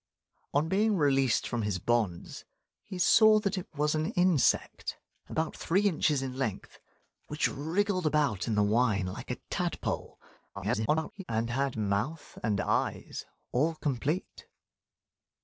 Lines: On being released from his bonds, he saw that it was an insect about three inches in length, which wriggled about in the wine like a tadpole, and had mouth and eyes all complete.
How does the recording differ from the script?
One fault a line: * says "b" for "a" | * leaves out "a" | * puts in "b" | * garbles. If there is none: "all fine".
* garbles